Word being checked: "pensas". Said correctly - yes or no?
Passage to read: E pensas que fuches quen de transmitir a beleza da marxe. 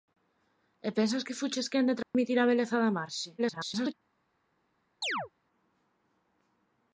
yes